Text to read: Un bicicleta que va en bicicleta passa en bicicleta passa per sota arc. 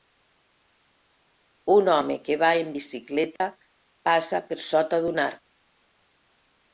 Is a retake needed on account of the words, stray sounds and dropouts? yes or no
yes